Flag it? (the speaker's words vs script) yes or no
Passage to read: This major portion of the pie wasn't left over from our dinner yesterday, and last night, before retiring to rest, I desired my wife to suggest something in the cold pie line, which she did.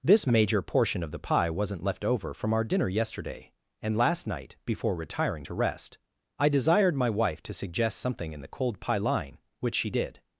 no